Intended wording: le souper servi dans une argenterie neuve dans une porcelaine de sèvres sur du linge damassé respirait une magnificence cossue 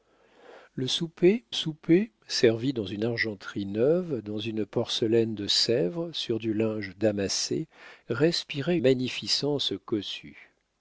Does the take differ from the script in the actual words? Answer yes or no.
yes